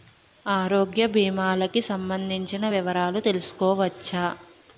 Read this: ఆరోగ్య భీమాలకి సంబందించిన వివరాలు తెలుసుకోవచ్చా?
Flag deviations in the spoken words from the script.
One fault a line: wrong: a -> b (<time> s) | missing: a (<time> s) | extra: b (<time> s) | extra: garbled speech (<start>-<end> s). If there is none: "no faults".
no faults